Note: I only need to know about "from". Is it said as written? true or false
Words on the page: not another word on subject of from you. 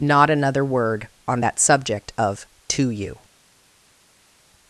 false